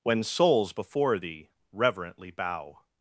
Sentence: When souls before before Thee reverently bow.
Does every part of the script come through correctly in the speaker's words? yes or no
no